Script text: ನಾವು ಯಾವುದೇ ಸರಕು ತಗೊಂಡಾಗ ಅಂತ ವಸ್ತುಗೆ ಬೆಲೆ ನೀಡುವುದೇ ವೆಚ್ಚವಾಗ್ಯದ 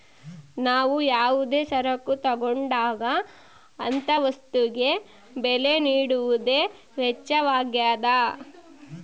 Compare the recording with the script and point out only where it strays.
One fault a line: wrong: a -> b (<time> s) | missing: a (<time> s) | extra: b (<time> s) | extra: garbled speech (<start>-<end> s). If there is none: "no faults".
no faults